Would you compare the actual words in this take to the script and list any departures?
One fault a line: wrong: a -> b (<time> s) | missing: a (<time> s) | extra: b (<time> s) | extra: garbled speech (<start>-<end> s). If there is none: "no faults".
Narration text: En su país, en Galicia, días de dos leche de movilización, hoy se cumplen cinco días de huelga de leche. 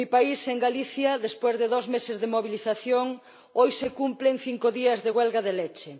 wrong: su -> mi (0.1 s)
wrong: días -> después (1.2 s)
wrong: leche -> meses (1.9 s)